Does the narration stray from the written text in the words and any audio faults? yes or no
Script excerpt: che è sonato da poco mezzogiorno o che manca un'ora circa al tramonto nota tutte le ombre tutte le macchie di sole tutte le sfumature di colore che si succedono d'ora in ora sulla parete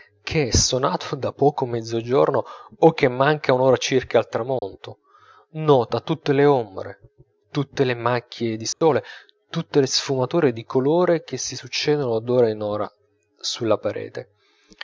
yes